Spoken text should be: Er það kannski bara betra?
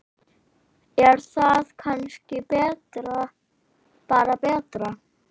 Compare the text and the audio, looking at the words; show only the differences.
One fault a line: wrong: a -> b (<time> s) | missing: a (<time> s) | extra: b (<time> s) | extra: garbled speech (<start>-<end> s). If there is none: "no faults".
no faults